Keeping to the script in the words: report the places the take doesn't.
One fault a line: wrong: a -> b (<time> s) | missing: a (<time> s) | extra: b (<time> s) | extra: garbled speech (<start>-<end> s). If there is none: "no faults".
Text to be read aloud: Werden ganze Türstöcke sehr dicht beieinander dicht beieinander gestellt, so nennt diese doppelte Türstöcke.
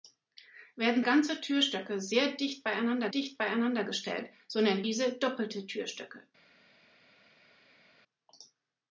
no faults